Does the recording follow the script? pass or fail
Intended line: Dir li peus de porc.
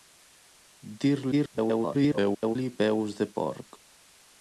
fail